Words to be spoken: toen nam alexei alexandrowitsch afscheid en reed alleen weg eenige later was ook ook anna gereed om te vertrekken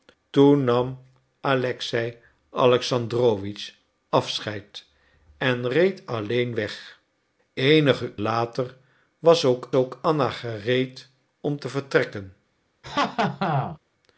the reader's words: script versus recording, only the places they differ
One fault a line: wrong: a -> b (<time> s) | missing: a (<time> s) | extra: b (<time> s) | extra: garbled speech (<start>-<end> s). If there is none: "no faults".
no faults